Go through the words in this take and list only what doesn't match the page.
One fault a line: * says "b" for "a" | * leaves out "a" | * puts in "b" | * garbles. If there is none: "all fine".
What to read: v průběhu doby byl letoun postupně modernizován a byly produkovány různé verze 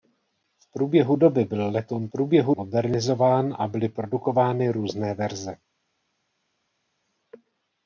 * says "průběhu" for "postupně"